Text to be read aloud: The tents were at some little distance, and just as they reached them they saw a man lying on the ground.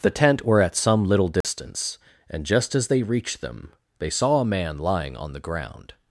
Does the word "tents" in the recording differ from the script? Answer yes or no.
yes